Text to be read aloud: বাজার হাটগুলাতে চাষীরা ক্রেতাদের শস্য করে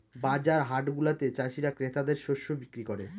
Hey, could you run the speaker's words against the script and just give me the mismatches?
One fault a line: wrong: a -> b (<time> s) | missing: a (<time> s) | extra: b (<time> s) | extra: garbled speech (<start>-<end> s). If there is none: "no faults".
extra: বিক্রি (2.5 s)